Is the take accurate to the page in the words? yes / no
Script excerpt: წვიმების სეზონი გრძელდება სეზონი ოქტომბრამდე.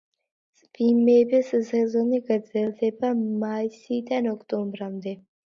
no